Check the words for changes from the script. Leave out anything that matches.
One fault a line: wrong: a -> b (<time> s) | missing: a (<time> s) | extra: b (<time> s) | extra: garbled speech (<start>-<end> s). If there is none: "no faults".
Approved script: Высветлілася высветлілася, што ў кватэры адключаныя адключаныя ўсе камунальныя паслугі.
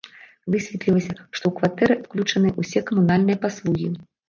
missing: высветлілася (1.1 s)
missing: адключаныя (2.6 s)